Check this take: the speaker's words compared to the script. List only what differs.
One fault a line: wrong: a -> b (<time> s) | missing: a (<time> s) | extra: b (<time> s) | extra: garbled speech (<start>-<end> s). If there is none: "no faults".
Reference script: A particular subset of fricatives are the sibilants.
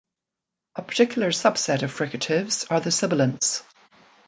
no faults